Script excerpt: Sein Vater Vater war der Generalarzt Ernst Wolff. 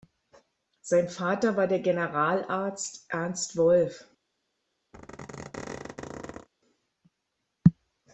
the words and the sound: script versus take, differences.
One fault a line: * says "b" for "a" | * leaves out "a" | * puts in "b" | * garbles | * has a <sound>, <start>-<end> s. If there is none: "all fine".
* leaves out "Vater"
* has a squeak, 4.9-6.5 s